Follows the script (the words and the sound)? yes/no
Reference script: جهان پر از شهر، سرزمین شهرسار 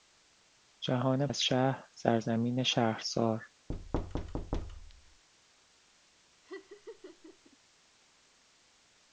no